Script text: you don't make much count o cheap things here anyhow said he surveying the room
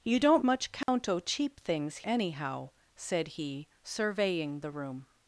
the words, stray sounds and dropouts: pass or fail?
fail